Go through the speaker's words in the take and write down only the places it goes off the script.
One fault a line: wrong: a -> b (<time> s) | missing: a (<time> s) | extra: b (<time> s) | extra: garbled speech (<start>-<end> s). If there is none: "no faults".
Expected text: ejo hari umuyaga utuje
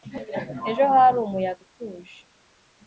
no faults